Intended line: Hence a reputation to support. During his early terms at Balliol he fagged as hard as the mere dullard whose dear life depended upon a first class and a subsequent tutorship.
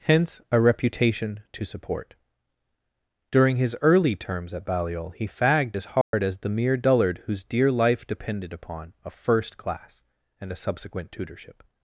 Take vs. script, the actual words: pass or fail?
pass